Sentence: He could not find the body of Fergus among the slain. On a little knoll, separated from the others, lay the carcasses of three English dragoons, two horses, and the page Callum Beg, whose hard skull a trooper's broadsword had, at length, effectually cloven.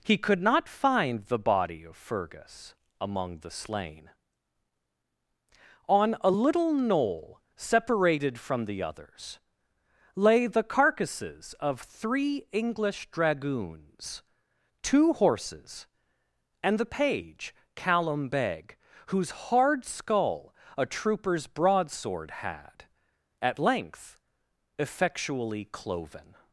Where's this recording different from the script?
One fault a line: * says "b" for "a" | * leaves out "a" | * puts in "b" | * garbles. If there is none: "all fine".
all fine